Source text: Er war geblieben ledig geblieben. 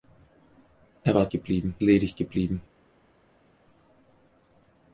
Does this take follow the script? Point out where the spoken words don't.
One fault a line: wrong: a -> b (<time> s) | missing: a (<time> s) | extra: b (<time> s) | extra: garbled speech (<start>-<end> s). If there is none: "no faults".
no faults